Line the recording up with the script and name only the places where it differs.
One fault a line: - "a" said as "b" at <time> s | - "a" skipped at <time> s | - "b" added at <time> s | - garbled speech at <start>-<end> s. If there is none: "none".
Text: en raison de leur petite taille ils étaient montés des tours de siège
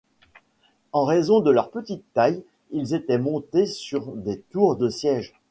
- "sur" added at 3.7 s